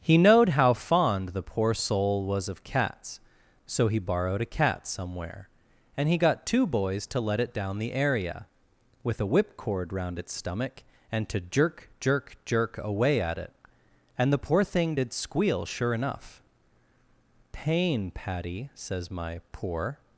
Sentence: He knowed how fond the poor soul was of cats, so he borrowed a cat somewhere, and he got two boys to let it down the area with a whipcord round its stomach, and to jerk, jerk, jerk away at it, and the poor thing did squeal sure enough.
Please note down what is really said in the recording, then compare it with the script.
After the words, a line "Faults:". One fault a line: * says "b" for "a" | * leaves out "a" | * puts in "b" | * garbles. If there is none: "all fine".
He knowed how fond the poor soul was of cats, so he borrowed a cat somewhere, and he got two boys to let it down the area with a whipcord round its stomach, and to jerk, jerk, jerk away at it, and the poor thing did squeal sure enough. 'Pain, Patty,' says my poor
Faults:
* puts in "Pain Patty says my poor"